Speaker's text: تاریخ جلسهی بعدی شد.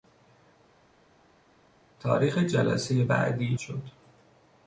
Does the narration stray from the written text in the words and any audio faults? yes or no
no